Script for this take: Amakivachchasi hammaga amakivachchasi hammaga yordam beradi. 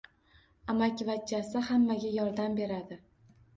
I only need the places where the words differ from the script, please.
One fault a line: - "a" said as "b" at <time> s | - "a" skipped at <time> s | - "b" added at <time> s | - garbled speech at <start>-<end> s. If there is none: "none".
- "amakivachchasi hammaga" skipped at 2.2 s